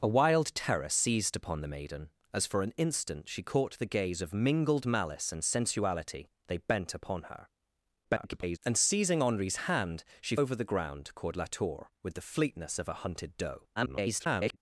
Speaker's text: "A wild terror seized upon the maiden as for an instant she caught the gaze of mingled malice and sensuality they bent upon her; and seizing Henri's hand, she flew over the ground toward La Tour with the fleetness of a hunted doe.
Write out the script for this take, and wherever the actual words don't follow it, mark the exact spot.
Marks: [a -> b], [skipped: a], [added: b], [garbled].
"A wild terror seized upon the maiden as for an instant she caught the gaze of mingled malice and sensuality they bent upon her; [garbled] and seizing Henri's hand, she [skipped: flew] over the ground toward La Tour with the fleetness of a hunted doe. [garbled]